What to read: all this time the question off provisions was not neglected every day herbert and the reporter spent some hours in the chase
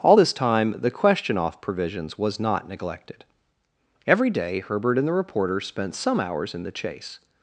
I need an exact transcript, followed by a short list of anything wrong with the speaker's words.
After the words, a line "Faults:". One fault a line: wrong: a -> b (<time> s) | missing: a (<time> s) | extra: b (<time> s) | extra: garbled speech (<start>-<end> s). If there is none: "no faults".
all this time the question off provisions was not neglected every day herbert and the reporter spent some hours in the chase
Faults:
no faults